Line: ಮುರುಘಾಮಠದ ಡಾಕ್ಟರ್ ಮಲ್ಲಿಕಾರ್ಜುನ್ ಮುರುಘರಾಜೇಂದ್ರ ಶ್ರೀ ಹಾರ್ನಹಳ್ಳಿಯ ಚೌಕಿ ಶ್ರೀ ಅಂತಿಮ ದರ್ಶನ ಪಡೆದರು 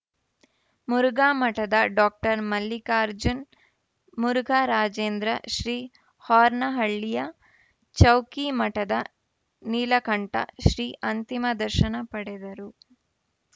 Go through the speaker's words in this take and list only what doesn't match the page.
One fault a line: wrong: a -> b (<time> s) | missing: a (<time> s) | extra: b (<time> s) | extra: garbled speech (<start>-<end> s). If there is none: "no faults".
extra: ಮಠದ ನೀಲಕಂಠ (8.6 s)